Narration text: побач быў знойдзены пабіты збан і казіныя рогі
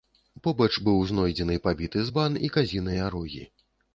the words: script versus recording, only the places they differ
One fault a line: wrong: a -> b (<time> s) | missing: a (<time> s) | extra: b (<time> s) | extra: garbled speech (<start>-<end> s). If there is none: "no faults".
no faults